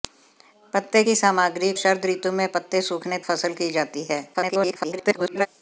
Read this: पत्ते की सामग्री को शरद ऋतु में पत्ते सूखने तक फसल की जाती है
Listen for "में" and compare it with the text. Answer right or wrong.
right